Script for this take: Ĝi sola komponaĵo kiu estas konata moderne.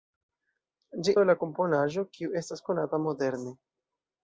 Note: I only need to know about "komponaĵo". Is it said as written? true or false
true